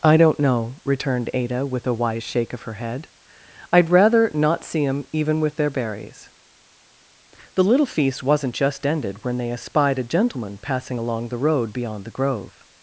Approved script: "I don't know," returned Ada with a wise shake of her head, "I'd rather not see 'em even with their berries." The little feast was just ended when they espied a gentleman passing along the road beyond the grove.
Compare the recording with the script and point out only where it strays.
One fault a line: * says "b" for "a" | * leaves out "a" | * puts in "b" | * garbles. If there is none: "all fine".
* says "wasn't" for "was"